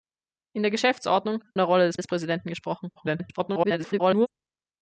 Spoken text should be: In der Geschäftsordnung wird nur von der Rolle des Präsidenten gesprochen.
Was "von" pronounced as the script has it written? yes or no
no